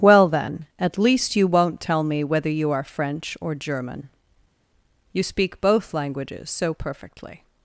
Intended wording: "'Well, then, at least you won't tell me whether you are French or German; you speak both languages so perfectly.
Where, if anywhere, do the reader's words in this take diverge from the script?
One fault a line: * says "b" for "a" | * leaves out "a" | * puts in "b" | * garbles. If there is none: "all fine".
all fine